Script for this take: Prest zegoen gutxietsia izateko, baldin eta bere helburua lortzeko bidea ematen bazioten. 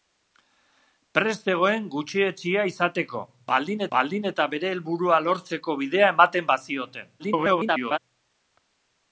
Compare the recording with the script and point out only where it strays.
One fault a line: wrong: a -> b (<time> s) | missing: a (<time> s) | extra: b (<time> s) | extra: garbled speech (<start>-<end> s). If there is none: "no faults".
extra: baldin (4.0 s)
extra: garbled speech (7.2-8.0 s)